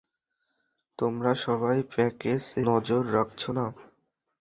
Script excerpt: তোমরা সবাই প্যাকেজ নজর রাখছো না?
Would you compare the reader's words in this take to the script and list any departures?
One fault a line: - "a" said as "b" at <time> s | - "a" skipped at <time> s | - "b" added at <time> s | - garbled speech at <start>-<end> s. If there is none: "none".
none